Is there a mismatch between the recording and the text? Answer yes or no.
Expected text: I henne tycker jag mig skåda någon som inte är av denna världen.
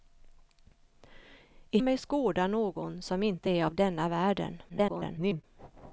yes